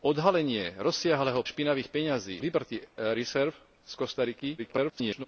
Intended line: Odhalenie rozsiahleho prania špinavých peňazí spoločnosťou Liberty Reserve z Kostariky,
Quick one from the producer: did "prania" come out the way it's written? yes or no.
no